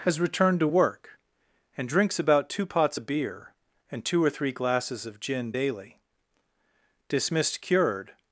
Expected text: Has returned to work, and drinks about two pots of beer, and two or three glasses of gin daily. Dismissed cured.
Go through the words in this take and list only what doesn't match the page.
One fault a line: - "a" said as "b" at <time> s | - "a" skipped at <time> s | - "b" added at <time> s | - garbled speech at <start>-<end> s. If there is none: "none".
none